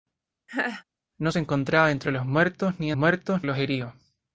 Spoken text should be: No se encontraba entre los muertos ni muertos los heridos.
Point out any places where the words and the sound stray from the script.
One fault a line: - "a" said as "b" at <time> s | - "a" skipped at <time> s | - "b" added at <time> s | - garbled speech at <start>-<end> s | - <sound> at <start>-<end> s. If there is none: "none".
- laugh at 0.5-0.8 s